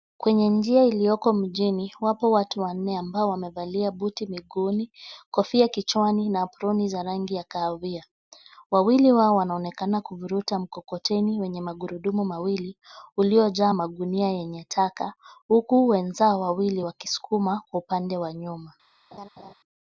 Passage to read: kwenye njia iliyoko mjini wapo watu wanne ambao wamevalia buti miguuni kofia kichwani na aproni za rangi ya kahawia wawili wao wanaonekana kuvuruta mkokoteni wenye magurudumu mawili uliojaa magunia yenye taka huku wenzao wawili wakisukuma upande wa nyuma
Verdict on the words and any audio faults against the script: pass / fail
fail